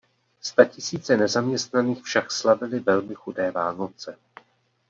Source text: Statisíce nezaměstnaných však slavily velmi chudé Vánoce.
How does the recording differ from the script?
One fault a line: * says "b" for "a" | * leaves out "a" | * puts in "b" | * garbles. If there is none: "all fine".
all fine